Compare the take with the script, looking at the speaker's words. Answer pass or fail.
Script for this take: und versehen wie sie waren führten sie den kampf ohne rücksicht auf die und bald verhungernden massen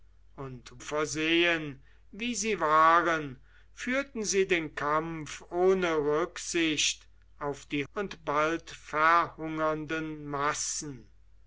pass